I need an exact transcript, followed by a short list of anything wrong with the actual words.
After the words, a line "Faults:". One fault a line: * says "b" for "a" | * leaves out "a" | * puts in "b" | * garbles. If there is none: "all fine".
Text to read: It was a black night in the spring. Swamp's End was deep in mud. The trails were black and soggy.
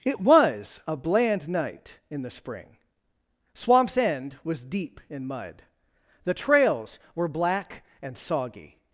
It was a bland night in the spring. Swamp's End was deep in mud. The trails were black and soggy.
Faults:
* says "bland" for "black"